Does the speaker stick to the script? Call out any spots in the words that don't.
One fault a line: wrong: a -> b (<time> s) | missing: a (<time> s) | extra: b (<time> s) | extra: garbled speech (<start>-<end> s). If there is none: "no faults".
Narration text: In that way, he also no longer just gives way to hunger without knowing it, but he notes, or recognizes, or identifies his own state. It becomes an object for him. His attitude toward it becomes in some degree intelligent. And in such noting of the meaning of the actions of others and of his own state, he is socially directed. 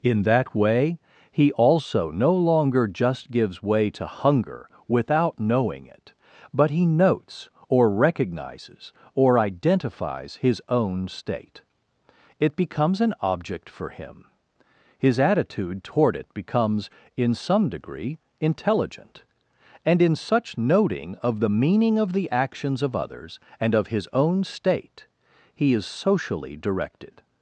no faults